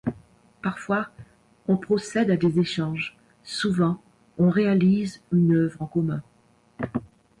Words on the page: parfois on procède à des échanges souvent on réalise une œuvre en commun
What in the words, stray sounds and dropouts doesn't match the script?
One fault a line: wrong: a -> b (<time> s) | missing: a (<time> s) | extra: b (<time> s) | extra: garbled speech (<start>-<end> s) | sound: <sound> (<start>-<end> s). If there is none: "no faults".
no faults